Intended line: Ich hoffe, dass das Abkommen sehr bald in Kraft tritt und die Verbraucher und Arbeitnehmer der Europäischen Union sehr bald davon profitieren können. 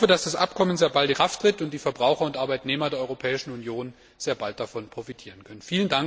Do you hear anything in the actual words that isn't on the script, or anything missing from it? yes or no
yes